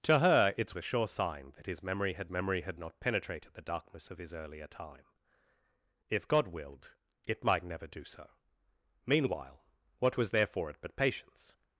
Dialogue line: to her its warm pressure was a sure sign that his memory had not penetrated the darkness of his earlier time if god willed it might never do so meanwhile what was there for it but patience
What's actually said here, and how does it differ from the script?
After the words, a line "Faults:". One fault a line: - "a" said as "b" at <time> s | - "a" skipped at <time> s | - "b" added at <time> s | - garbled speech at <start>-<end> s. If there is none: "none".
to her its a sure sign that his memory had memory had not penetrated the darkness of his earlier time if god willed it might never do so meanwhile what was there for it but patience
Faults:
- "warm pressure was" skipped at 0.8 s
- "memory had" added at 2.3 s